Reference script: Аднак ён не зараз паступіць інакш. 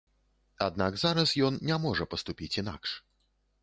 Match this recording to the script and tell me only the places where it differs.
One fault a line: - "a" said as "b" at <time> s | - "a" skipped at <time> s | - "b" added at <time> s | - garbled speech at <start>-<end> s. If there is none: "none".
- "зараз" added at 1.0 s
- "зараз" said as "можа" at 1.9 s